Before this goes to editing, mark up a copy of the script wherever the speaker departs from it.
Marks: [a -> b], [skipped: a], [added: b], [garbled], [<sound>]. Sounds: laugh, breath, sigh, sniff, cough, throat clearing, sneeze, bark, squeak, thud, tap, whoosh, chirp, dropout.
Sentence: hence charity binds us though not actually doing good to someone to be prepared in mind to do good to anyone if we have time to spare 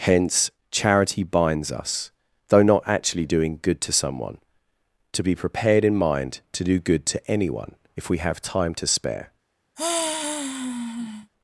hence charity binds us though not actually doing good to someone to be prepared in mind to do good to anyone if we have time to spare [sigh]